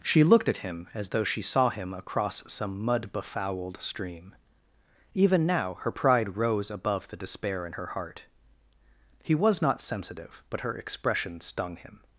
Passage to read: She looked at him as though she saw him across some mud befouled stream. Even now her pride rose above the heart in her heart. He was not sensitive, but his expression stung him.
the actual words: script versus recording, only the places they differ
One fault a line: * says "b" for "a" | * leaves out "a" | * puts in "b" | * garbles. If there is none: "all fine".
* says "despair" for "heart"
* says "her" for "his"